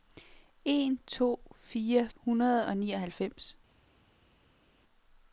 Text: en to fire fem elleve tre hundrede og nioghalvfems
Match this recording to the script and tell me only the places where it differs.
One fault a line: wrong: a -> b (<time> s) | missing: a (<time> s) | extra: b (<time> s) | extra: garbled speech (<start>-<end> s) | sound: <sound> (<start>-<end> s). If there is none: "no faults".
missing: fem elleve tre (2.1 s)